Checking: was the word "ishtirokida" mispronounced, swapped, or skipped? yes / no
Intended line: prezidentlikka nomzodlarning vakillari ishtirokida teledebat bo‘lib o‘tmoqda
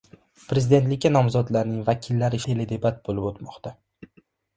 yes